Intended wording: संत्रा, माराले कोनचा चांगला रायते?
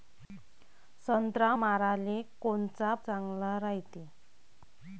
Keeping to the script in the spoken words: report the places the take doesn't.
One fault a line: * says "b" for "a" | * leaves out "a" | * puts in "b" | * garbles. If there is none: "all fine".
all fine